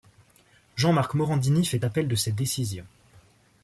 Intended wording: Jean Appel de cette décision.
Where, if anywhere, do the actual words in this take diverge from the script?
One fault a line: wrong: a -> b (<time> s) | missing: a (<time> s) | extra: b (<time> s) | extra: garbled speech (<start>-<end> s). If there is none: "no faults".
extra: Marc Morandini fait (0.9 s)